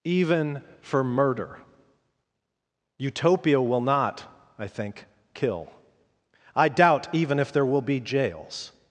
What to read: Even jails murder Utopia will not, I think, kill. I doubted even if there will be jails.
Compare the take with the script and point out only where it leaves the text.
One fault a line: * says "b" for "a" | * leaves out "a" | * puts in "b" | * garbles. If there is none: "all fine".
* says "for" for "jails"
* says "doubt" for "doubted"